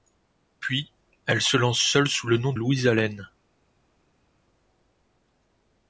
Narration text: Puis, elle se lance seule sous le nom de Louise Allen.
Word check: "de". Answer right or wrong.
wrong